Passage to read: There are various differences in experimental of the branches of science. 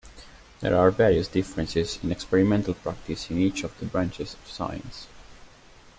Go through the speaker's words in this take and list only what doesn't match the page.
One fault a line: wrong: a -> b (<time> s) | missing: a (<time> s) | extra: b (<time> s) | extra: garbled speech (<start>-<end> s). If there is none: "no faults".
extra: practice in each (2.7 s)